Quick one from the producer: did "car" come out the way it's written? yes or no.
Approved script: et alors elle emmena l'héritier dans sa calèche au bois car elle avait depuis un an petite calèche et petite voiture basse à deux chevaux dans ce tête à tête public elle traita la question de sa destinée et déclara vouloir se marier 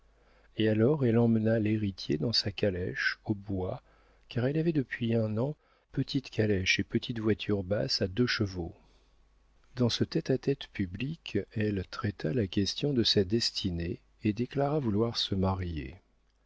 yes